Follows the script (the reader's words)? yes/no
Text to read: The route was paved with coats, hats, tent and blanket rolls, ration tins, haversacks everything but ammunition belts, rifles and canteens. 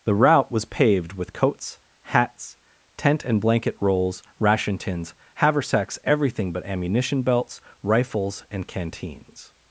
yes